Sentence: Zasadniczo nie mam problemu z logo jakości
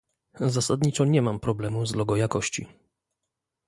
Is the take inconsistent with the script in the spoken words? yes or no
no